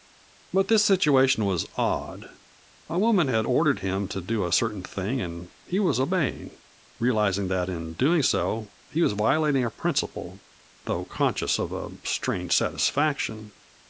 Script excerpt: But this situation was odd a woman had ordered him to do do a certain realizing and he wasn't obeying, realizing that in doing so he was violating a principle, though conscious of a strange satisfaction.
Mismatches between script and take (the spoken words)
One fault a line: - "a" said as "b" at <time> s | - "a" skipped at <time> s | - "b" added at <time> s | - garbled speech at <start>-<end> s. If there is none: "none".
- "do" skipped at 4.4 s
- "realizing" said as "thing" at 4.8 s
- "wasn't" said as "was" at 5.8 s